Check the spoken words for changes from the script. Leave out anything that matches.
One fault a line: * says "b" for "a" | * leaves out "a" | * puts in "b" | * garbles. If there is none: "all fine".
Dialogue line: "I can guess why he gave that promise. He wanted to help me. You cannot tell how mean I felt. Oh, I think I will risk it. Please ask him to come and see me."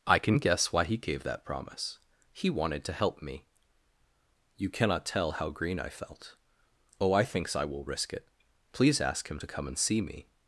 * says "green" for "mean"
* says "thinks" for "think"